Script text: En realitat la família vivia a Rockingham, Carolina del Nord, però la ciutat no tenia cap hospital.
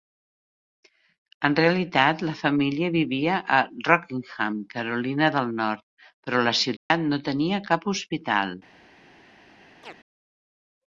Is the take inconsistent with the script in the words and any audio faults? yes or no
yes